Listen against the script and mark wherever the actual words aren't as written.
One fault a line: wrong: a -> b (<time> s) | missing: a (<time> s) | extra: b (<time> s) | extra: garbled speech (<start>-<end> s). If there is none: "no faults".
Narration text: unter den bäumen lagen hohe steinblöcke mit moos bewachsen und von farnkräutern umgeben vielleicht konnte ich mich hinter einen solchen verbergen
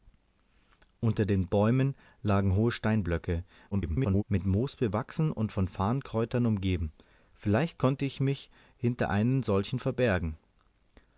extra: garbled speech (3.7-4.2 s)